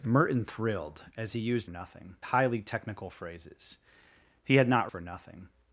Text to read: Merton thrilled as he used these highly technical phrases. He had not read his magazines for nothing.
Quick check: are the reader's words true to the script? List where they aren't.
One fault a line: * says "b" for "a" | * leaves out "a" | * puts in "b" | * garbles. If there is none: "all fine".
* says "nothing" for "these"
* leaves out "read his magazines"